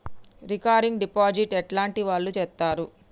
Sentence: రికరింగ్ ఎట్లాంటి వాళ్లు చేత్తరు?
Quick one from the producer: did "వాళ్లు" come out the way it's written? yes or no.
yes